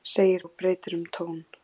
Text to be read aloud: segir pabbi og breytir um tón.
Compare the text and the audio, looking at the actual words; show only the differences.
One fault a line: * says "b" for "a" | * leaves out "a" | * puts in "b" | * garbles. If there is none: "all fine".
* leaves out "pabbi"